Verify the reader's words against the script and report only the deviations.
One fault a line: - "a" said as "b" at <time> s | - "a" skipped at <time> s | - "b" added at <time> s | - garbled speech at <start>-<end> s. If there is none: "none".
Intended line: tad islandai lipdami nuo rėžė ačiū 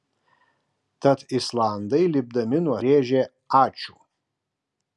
none